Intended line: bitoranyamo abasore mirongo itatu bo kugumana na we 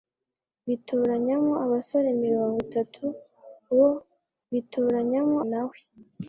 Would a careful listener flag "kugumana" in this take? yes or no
yes